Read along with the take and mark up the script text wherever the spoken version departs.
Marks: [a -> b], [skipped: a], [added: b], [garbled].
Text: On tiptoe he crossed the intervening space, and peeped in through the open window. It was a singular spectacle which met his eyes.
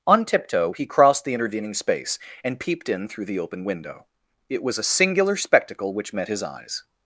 On tiptoe he crossed the intervening space, and peeped in through the open window. It was a singular spectacle which met his eyes.